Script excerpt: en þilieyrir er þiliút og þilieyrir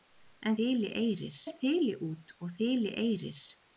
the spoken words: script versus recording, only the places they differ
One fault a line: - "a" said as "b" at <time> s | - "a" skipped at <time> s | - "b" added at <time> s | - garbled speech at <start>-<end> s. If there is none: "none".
none